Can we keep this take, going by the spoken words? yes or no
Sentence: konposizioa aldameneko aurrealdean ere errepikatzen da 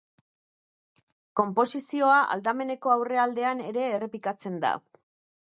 yes